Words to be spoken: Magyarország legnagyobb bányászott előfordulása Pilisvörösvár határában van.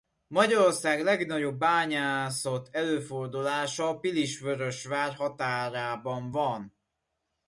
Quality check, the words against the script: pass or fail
pass